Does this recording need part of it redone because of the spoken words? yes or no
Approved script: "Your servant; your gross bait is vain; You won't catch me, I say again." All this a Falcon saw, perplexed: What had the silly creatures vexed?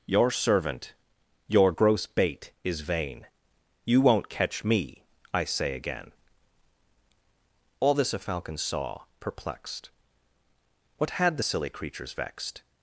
no